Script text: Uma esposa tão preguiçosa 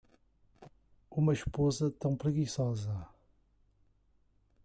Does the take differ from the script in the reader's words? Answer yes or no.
no